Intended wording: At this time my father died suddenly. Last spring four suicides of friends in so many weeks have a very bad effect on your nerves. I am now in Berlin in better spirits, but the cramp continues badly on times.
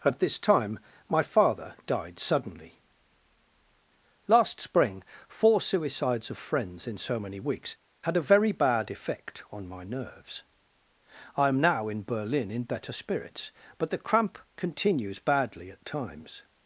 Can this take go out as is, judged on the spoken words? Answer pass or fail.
fail